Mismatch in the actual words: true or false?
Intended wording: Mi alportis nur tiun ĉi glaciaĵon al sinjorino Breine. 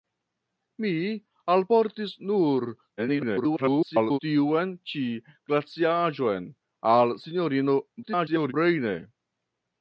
true